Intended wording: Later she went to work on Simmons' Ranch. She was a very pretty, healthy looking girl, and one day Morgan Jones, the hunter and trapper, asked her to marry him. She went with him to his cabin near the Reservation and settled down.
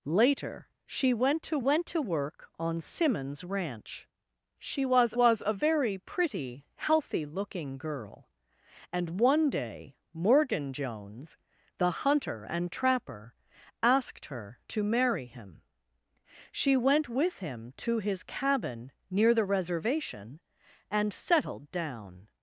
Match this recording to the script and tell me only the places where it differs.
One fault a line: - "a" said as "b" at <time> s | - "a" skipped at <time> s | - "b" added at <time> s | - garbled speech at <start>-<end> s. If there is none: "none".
- "went to" added at 1.6 s
- "was" added at 5.1 s